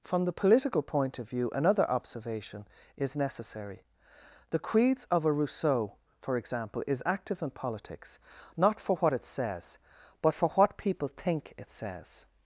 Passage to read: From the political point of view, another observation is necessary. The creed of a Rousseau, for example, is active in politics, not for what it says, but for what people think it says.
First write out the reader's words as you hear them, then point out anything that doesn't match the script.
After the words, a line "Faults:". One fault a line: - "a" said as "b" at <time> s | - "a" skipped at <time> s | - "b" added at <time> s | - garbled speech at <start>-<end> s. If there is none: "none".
From the political point of view, another observation is necessary. The creeds of a Rousseau, for example, is active in politics, not for what it says, but for what people think it says.
Faults:
- "creed" said as "creeds" at 4.6 s